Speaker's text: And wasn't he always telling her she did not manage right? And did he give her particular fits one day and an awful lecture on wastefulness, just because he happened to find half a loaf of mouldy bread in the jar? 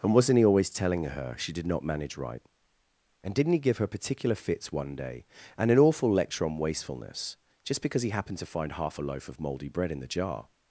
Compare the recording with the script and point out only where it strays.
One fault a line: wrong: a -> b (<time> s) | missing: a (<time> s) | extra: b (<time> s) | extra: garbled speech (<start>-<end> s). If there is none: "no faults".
wrong: did -> didn't (3.4 s)